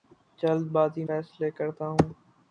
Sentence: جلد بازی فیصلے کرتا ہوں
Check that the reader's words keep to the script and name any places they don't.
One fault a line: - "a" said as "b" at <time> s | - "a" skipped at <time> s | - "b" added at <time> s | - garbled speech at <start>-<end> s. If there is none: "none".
none